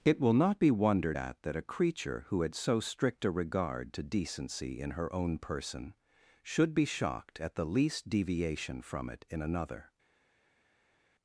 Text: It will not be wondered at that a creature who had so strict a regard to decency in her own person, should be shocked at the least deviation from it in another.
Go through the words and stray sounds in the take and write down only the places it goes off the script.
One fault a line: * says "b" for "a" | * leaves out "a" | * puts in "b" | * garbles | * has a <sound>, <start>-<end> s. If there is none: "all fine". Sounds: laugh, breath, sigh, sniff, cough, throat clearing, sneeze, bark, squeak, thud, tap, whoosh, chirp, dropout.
all fine